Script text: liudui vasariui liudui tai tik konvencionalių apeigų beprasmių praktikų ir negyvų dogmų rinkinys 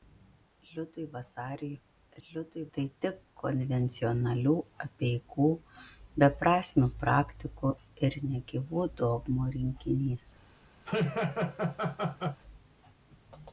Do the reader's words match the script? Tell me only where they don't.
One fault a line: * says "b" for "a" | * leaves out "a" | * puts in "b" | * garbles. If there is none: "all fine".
all fine